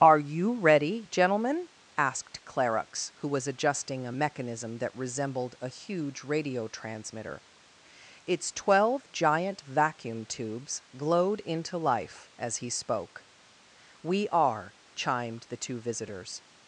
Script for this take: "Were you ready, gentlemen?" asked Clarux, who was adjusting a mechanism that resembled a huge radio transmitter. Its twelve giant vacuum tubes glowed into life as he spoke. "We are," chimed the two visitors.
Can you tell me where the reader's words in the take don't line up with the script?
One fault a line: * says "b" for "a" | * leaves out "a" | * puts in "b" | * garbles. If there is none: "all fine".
* says "Are" for "Were"